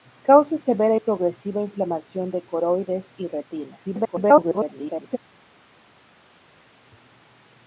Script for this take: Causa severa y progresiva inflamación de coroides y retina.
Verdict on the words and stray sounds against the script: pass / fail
fail